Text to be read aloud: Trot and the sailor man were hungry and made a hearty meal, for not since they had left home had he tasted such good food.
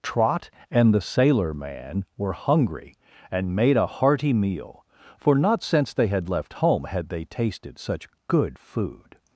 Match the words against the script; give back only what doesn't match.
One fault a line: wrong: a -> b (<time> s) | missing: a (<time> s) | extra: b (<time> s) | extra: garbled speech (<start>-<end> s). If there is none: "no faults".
wrong: he -> they (7.1 s)